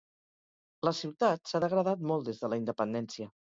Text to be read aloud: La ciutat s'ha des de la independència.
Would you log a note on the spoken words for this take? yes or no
yes